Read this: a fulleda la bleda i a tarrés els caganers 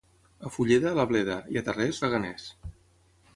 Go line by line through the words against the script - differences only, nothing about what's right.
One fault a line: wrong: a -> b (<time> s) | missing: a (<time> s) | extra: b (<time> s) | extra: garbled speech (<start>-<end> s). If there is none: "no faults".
missing: els (2.0 s)